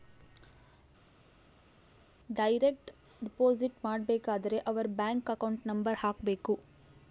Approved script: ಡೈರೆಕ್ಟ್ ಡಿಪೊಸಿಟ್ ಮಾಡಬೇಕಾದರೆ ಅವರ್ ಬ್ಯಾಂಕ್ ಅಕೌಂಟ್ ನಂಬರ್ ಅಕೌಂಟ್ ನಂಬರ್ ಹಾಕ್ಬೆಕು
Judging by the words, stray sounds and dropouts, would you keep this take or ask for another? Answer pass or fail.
fail